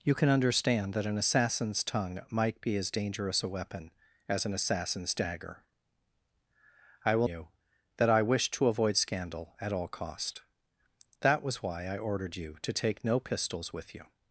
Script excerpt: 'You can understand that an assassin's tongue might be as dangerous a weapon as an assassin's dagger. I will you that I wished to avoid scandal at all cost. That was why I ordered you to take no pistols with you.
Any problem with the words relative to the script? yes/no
no